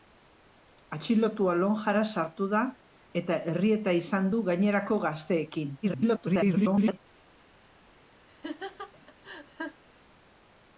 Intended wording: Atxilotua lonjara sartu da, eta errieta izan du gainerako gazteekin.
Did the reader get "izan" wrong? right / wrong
right